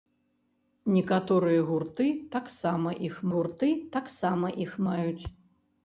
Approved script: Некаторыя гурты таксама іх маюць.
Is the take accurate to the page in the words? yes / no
no